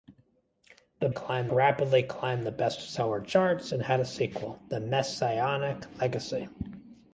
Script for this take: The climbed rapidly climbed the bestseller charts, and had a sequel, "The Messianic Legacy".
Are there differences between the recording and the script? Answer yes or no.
no